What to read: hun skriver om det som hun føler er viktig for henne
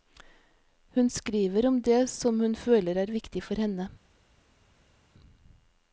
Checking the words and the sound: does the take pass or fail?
pass